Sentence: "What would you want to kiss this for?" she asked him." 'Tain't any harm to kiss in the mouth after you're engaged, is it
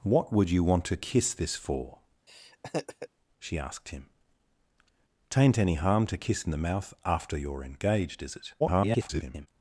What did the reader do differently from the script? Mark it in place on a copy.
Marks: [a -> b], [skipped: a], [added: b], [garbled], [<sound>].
"What would you want to kiss this for?" [laugh] she asked him." 'Tain't any harm to kiss in the mouth after you're engaged, is it [garbled]